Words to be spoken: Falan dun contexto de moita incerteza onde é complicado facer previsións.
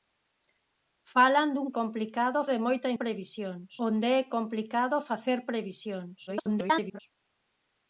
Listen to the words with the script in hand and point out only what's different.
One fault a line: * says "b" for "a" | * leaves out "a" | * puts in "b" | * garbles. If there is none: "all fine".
* says "complicado" for "contexto"
* says "previsións" for "incerteza"
* garbles